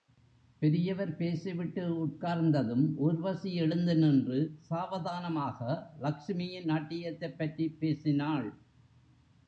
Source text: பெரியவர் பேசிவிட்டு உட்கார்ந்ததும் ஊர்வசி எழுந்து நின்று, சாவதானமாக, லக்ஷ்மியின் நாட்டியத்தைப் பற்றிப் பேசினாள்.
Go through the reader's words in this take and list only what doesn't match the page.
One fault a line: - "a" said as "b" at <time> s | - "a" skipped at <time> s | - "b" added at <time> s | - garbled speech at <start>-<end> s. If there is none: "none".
none